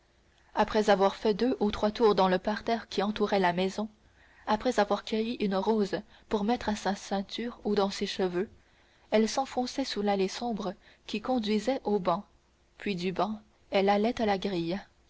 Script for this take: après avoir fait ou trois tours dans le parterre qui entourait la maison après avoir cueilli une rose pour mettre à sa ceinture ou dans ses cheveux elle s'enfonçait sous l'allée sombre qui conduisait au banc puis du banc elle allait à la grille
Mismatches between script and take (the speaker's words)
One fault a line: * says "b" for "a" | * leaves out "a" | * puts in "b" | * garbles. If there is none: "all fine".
* puts in "deux"